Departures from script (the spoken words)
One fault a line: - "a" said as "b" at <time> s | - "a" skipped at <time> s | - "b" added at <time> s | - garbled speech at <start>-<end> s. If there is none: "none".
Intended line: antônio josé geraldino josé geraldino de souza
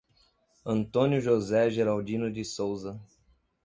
- "josé geraldino" skipped at 2.3 s